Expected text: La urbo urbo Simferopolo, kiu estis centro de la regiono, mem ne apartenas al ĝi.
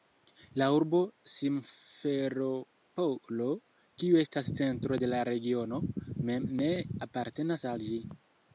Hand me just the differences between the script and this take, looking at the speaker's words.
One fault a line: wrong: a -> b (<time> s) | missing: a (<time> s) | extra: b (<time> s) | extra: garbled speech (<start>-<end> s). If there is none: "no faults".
missing: urbo (1.0 s)
wrong: estis -> estas (4.2 s)